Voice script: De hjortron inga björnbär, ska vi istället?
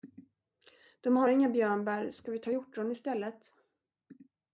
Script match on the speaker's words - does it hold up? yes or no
no